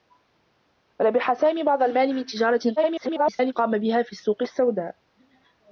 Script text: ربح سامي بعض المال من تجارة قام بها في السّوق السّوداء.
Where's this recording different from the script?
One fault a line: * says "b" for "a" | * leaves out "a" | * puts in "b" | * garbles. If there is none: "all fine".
* garbles